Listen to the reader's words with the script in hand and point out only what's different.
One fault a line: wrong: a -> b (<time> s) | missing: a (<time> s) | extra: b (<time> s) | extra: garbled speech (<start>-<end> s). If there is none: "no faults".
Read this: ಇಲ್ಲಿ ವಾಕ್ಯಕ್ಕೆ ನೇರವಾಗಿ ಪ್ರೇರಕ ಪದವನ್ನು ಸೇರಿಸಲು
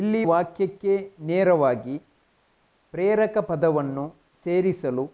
no faults